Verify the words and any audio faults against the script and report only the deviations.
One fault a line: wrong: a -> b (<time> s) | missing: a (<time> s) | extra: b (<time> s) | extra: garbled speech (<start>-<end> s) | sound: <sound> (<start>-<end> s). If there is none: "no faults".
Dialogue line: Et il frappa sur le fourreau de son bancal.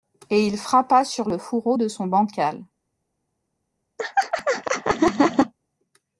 sound: laugh (4.0-5.5 s)